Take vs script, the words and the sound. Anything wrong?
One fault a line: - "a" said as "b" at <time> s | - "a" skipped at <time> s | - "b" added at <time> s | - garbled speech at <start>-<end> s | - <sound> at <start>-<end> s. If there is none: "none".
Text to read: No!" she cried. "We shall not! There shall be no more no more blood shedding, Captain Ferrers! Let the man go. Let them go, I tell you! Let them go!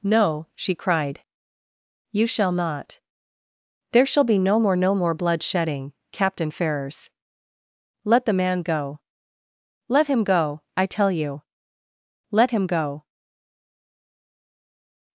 - "We" said as "You" at 2.1 s
- "them" said as "him" at 10.1 s
- "them" said as "him" at 12.5 s